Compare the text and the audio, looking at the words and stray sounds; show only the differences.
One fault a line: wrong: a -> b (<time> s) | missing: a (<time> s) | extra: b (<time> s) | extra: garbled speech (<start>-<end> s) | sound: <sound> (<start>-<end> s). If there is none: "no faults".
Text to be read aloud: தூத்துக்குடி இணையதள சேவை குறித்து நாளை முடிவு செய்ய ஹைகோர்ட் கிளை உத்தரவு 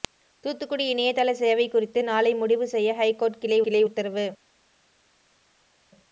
extra: கிளை (3.6 s)